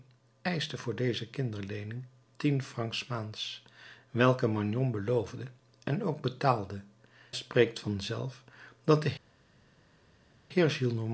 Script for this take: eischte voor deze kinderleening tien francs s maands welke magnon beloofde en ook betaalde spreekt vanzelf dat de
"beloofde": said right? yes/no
yes